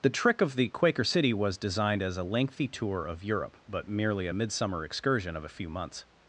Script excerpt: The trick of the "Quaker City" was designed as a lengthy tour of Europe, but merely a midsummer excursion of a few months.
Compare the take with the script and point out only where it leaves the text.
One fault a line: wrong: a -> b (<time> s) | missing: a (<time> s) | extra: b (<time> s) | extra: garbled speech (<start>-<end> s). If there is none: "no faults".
no faults